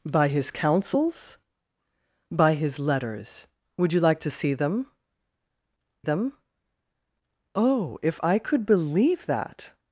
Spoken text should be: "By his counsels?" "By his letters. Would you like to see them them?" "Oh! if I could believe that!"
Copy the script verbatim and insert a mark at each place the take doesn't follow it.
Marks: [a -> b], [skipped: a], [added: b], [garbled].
"By his counsels?" "By his letters. Would you like to see them them?" "Oh! if I could believe that!"